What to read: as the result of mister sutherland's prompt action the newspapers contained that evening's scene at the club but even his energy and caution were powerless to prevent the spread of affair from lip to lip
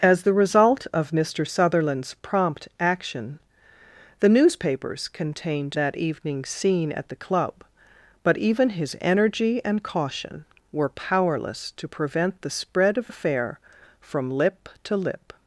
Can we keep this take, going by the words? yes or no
yes